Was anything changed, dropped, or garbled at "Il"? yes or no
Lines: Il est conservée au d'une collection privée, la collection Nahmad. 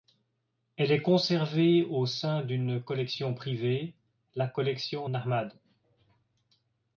yes